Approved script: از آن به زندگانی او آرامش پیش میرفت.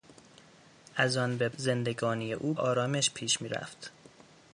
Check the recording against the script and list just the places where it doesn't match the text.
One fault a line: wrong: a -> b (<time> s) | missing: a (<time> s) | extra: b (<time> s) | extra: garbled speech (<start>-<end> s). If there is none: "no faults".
no faults